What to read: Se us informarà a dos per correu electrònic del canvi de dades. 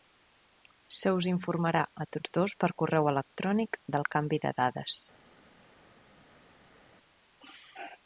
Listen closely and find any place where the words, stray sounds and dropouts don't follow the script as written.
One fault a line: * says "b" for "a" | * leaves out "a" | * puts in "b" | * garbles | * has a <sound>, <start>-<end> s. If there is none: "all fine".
* puts in "tots"